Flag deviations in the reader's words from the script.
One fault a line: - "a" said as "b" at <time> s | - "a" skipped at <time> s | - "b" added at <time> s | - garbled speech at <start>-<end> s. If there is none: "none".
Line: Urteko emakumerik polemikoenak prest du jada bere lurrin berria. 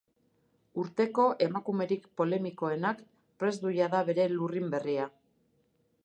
none